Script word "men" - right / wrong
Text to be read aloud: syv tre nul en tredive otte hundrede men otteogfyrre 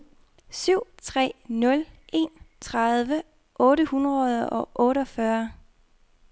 wrong